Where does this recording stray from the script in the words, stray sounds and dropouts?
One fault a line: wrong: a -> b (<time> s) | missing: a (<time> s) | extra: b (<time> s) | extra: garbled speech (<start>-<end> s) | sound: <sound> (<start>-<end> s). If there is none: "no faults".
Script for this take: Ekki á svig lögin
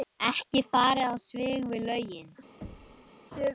extra: farið (0.7 s)
extra: við (1.8 s)
sound: thud (2.6-3.1 s)